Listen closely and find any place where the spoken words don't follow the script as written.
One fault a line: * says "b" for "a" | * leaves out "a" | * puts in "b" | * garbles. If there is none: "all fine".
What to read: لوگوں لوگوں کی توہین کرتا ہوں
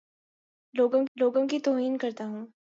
all fine